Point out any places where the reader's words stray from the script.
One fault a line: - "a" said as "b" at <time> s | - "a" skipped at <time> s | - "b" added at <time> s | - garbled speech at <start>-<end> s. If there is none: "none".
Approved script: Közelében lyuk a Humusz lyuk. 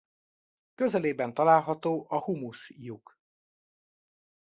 - "lyuk" said as "található" at 1.3 s